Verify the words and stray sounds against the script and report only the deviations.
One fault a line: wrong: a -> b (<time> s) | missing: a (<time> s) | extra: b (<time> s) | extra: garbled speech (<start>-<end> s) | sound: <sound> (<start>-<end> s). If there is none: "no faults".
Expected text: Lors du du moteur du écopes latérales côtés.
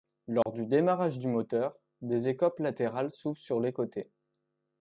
sound: dropout (0.4-0.5 s)
extra: démarrage (0.7 s)
wrong: du -> des (2.0 s)
extra: s'ouvrent sur les (3.1 s)